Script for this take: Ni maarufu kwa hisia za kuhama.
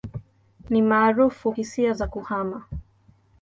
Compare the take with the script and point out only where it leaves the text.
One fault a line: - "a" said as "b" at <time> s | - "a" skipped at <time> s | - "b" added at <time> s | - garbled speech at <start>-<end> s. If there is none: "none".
- "kwa" skipped at 1.5 s